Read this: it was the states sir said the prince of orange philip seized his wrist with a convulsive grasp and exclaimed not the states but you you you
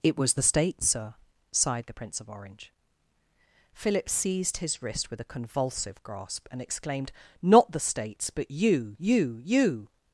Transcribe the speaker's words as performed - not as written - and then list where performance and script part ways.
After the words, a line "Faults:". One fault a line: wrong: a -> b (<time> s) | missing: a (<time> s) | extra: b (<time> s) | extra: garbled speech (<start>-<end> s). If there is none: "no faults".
it was the states sir sighed the prince of orange philip seized his wrist with a convulsive grasp and exclaimed not the states but you you you
Faults:
wrong: said -> sighed (1.5 s)